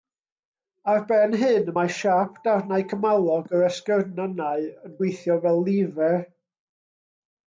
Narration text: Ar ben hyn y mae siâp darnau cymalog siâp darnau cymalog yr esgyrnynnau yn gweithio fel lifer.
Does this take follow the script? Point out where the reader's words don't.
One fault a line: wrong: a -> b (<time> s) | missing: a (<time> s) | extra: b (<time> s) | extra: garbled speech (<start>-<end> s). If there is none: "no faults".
missing: siâp darnau cymalog (3.5 s)